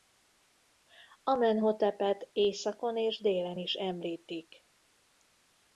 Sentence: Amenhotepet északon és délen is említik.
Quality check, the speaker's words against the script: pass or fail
pass